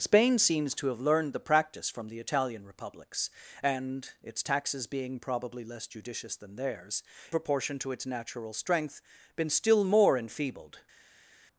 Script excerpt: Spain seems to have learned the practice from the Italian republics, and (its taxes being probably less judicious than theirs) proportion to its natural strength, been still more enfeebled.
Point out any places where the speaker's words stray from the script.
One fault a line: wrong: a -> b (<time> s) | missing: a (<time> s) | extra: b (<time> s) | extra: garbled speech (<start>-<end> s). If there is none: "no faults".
no faults